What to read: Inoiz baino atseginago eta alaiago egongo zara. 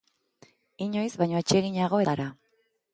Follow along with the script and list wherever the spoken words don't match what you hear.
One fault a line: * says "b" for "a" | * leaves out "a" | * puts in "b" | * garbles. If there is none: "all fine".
* leaves out "eta alaiago egongo"